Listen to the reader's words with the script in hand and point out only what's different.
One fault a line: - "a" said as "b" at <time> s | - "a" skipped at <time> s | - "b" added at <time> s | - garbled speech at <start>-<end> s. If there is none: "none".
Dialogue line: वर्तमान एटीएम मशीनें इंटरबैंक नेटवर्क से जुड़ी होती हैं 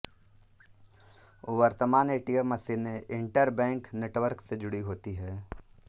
none